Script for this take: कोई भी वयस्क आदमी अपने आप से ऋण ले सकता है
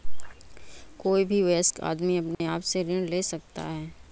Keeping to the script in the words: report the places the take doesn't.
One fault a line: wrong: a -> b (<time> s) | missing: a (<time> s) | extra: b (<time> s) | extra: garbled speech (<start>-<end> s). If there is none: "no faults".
no faults